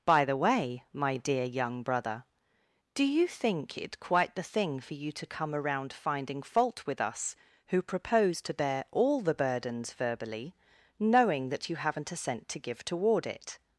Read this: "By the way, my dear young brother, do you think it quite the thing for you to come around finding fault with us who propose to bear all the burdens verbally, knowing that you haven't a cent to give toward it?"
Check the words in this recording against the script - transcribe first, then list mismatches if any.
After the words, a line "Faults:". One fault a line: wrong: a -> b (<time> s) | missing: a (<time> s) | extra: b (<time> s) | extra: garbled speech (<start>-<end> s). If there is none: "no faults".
"By the way, my dear young brother, do you think it quite the thing for you to come around finding fault with us who propose to bear all the burdens verbally, knowing that you haven't a cent to give toward it?"
Faults:
no faults